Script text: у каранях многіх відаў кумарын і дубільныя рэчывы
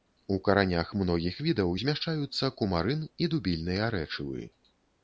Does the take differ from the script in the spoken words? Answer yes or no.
yes